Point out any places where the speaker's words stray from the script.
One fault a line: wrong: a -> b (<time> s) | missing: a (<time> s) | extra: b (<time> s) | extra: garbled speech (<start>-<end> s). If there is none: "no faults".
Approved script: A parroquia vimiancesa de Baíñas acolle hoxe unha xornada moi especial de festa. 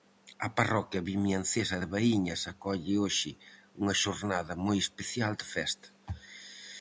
no faults